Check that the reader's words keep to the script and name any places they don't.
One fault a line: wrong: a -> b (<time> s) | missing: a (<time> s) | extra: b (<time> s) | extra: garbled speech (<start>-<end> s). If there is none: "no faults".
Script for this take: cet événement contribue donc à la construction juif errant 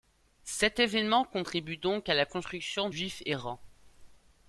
no faults